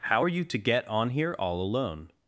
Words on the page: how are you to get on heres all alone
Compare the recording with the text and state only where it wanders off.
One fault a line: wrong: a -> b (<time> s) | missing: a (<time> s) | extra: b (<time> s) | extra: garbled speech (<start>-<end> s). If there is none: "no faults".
wrong: heres -> here (1.1 s)